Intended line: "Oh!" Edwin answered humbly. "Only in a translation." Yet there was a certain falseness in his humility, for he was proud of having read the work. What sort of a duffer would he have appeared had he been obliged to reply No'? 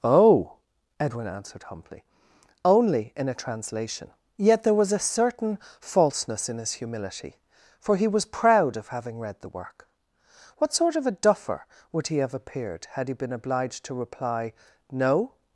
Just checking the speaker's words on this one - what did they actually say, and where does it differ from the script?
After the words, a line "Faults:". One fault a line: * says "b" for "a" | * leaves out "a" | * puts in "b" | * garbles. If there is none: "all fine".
"Oh!" Edwin answered humbly. "Only in a translation." Yet there was a certain falseness in his humility, for he was proud of having read the work. What sort of a duffer would he have appeared had he been obliged to reply No'?
Faults:
all fine